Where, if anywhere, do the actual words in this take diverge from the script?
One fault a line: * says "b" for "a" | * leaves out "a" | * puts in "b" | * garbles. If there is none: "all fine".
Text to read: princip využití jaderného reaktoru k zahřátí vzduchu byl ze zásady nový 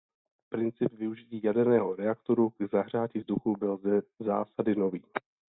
all fine